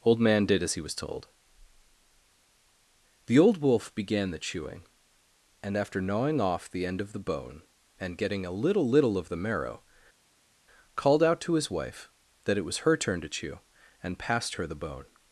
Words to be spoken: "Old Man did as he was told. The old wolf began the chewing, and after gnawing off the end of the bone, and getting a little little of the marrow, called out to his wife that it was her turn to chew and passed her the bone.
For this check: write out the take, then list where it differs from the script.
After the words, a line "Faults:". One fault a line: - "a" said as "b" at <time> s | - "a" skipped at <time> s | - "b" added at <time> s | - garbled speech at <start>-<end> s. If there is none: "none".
"Old Man did as he was told. The old wolf began the chewing, and after gnawing off the end of the bone, and getting a little little of the marrow, called out to his wife that it was her turn to chew and passed her the bone.
Faults:
none